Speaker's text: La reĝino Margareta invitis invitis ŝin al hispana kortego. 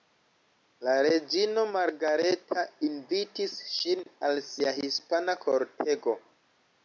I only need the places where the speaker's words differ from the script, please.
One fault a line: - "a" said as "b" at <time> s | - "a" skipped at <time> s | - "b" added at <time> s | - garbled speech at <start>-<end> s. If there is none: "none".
- "invitis" skipped at 3.5 s
- "sia" added at 4.5 s